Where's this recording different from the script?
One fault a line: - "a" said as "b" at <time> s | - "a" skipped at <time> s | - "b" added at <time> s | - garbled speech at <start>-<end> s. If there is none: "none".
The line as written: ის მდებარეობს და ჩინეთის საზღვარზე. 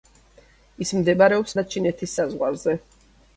none